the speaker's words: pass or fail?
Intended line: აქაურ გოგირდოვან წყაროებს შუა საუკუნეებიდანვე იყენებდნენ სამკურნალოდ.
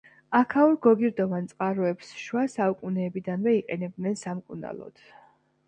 pass